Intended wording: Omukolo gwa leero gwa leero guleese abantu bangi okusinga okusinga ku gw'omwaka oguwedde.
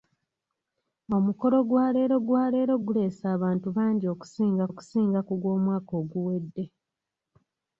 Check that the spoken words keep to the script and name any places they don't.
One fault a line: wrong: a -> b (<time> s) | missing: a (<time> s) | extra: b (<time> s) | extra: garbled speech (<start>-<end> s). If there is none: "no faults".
no faults